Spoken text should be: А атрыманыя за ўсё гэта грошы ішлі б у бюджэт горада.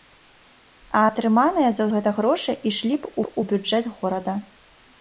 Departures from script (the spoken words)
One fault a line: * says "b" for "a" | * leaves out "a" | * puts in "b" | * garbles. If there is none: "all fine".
* leaves out "ўсё"
* puts in "б"